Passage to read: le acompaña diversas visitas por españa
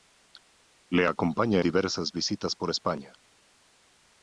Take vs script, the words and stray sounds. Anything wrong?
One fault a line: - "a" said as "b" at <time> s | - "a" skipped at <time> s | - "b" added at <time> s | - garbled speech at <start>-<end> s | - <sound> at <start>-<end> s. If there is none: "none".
none